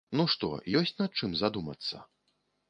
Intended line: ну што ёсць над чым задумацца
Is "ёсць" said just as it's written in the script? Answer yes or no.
yes